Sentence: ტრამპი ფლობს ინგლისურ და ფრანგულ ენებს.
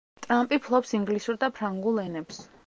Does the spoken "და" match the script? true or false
true